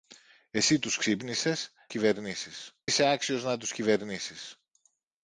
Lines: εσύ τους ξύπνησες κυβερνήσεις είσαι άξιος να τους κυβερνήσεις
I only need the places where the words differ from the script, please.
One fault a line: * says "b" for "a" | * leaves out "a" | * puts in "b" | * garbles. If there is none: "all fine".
all fine